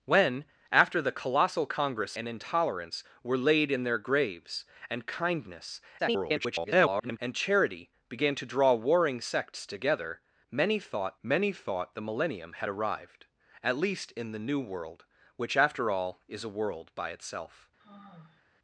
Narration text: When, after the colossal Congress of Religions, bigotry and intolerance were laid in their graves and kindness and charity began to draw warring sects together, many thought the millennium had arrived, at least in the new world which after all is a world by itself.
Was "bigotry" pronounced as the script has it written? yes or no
no